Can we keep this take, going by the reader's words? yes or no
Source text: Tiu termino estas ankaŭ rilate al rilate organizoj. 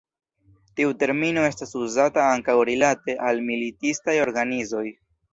no